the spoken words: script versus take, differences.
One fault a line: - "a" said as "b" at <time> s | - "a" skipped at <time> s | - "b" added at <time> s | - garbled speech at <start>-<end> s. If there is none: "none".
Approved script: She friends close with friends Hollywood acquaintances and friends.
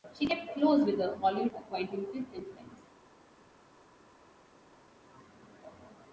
- "friends" said as "kept" at 0.2 s
- "friends" said as "her" at 1.0 s